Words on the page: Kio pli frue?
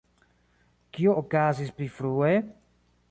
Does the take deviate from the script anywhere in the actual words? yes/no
yes